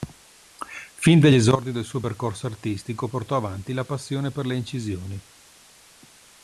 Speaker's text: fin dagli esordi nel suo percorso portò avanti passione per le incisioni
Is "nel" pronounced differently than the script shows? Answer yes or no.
yes